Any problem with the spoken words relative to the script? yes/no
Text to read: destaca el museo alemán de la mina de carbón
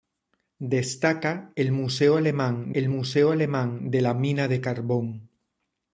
yes